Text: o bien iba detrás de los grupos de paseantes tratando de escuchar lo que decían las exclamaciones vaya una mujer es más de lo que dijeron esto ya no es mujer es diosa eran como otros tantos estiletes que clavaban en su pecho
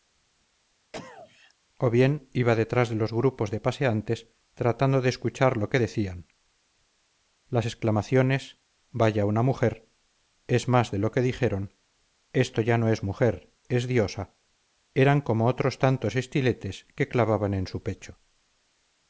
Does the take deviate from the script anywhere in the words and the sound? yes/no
yes